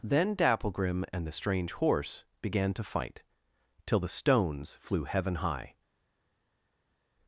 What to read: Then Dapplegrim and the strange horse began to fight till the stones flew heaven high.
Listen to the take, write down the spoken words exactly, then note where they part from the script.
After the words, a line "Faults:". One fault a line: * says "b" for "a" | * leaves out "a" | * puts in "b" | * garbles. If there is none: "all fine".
Then Dapplegrim and the strange horse began to fight till the stones flew heaven high.
Faults:
all fine